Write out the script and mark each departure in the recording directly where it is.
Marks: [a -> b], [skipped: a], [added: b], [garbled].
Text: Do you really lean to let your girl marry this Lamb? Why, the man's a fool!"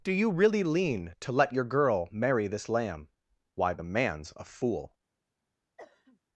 Do you really lean to let your girl marry this Lamb? Why, the man's a fool!"